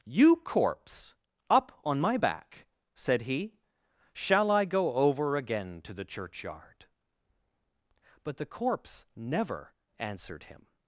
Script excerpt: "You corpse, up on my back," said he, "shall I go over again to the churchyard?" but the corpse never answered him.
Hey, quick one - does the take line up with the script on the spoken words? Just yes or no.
yes